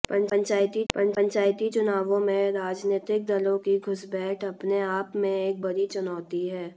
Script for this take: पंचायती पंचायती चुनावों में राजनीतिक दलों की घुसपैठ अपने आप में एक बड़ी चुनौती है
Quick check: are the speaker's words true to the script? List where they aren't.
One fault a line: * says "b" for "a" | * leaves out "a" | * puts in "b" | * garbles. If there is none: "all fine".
all fine